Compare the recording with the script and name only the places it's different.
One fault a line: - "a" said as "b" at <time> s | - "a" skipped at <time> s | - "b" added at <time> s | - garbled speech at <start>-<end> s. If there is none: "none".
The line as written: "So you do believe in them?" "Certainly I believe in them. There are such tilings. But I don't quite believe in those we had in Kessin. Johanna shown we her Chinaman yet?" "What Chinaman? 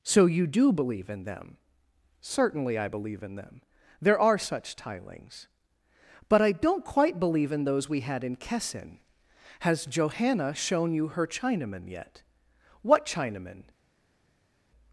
- "Has" added at 9.6 s
- "we" said as "you" at 10.9 s